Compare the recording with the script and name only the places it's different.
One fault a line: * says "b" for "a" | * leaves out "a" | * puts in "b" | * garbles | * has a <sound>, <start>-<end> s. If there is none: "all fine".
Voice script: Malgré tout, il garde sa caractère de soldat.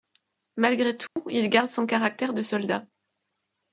* has a dropout, 1.1-1.2 s
* says "son" for "sa"